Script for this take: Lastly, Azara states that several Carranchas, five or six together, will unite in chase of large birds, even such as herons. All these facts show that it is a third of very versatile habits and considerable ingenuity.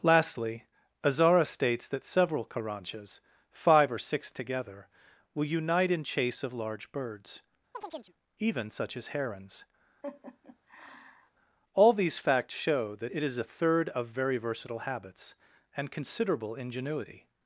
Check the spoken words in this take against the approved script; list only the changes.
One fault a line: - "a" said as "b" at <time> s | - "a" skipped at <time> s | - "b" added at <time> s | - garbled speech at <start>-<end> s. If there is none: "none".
none